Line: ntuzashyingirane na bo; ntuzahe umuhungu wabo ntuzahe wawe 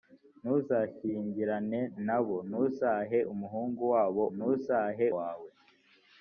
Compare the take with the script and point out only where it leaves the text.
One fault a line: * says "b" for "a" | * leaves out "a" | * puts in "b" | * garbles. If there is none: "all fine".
all fine